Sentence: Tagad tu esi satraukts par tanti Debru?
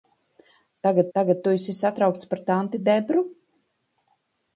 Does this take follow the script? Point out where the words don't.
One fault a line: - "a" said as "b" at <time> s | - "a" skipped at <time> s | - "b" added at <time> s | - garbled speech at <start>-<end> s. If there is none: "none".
- "tagad" added at 1.2 s